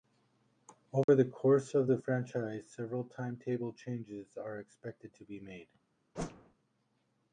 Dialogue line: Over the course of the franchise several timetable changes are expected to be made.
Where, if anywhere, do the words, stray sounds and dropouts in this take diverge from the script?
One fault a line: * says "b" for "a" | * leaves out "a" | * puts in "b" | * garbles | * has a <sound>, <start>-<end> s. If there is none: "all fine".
* has a dropout, 1.0-1.1 s
* has a whoosh, 6.1-6.5 s